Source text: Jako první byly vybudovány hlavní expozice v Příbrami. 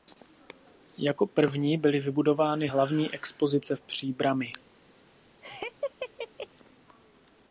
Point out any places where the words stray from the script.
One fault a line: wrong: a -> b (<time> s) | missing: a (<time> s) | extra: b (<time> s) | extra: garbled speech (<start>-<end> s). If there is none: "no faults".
no faults